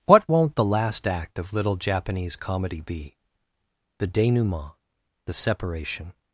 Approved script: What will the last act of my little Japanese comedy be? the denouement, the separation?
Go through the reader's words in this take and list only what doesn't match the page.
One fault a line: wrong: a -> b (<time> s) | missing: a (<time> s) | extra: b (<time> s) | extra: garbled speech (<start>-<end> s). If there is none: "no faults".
wrong: will -> won't (0.3 s)
missing: my (1.5 s)